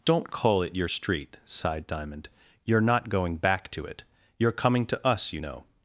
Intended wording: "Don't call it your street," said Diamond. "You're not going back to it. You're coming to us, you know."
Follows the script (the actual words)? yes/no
no